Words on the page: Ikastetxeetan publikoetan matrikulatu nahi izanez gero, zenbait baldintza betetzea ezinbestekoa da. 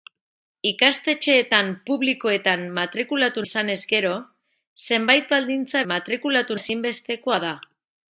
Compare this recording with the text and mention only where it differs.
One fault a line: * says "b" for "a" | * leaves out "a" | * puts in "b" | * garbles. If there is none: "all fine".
* leaves out "nahi"
* says "matrikulatu" for "betetzea"